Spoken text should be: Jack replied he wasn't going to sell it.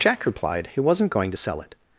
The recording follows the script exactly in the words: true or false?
true